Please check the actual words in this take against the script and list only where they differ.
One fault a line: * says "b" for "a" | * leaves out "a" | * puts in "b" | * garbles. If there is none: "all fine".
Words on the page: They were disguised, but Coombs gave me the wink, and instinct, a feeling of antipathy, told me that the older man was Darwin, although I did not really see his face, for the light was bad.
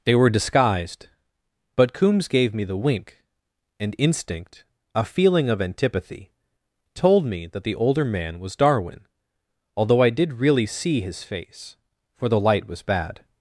* leaves out "not"